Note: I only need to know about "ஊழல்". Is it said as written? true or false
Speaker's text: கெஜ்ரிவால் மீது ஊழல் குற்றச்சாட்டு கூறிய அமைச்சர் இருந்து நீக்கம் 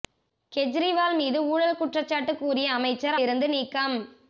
true